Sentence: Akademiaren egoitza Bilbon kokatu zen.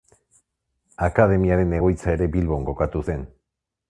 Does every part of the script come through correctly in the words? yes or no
no